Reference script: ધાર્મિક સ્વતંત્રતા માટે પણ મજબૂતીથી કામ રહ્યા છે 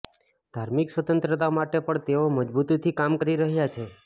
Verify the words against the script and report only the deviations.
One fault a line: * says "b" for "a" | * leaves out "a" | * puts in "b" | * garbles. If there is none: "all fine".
* puts in "તેઓ"
* puts in "કરી"